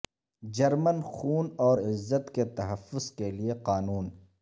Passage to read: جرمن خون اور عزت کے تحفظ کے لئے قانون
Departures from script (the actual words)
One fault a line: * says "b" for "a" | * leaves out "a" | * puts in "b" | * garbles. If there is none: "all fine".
all fine